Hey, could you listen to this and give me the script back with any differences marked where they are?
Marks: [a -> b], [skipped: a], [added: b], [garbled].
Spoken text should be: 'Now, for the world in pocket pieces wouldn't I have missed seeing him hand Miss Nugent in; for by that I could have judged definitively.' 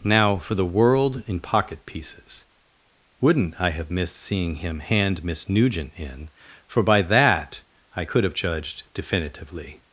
'Now, for the world in pocket pieces wouldn't I have missed seeing him hand Miss Nugent in; for by that I could have judged definitively.'